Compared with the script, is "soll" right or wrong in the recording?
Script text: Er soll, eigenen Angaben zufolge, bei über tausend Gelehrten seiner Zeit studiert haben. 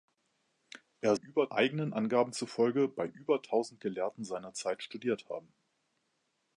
wrong